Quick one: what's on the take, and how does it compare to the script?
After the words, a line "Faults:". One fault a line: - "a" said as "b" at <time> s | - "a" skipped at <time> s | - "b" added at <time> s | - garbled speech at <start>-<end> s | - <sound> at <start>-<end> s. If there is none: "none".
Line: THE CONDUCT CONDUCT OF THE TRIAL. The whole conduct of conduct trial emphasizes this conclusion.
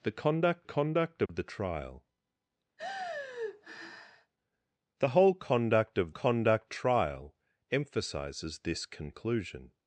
THE CONDUCT CONDUCT OF THE TRIAL. The whole conduct of conduct trial emphasizes this conclusion.
Faults:
- dropout at 1.3-1.3 s
- sigh at 2.8-4.3 s